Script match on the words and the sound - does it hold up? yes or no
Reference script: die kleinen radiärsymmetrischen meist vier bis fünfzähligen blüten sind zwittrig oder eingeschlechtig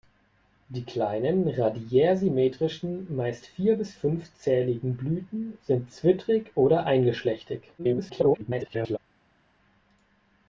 no